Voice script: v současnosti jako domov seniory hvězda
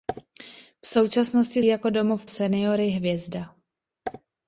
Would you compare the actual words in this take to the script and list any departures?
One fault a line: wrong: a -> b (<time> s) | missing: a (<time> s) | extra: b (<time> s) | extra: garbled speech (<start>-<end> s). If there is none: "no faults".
no faults